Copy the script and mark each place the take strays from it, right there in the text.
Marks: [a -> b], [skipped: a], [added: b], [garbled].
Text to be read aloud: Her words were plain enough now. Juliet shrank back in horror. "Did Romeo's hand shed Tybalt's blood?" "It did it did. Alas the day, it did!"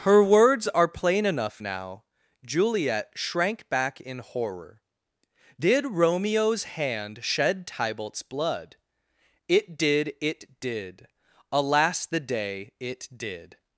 Her words [were -> are] plain enough now. Juliet shrank back in horror. "Did Romeo's hand shed Tybalt's blood?" "It did it did. Alas the day, it did!"